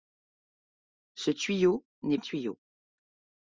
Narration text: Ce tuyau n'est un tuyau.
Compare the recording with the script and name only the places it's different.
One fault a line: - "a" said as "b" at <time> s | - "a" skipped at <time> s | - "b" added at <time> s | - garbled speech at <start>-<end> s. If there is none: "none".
none